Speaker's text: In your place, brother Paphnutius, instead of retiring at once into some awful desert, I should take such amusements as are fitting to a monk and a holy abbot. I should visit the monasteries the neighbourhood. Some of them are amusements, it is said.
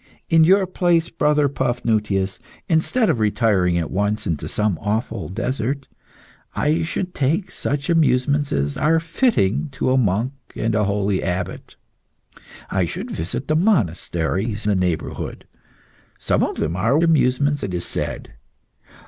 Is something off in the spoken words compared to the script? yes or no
no